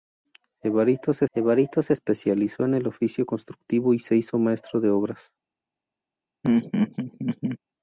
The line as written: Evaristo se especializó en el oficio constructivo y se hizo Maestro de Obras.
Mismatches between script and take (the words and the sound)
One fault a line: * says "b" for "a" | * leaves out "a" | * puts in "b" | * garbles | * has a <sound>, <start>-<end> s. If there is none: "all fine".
* puts in "evaristo se"
* has a laugh, 6.4-7.6 s